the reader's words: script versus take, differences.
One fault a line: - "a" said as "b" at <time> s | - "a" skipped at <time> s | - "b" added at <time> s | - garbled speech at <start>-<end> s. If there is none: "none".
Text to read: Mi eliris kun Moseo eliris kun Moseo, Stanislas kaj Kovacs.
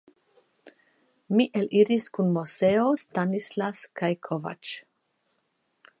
- "eliris kun Moseo" skipped at 2.8 s